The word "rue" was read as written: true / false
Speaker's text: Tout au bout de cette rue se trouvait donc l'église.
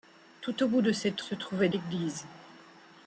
false